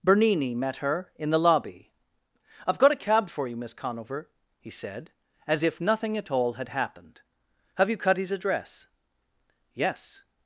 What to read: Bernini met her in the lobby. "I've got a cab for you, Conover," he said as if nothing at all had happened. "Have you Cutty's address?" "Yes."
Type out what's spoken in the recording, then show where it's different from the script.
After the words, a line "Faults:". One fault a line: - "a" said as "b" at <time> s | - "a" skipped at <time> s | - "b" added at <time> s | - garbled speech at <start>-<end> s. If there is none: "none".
Bernini met her in the lobby. "I've got a cab for you, Miss Conover," he said as if nothing at all had happened. "Have you Cutty's address?" "Yes."
Faults:
- "Miss" added at 3.5 s